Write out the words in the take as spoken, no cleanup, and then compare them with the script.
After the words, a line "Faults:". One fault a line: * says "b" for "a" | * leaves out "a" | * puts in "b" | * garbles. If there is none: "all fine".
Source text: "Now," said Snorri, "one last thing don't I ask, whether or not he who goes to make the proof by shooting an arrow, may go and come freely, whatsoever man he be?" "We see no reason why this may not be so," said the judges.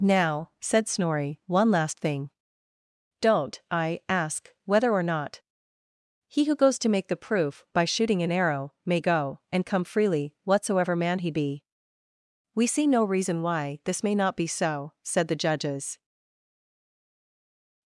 "Now," said Snorri, "one last thing don't I ask, whether or not he who goes to make the proof by shooting an arrow, may go and come freely, whatsoever man he be?" "We see no reason why this may not be so," said the judges.
Faults:
all fine